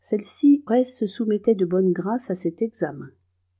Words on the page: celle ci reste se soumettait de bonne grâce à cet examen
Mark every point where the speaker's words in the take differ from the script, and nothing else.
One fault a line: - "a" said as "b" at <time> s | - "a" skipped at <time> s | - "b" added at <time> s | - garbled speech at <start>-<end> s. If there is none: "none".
none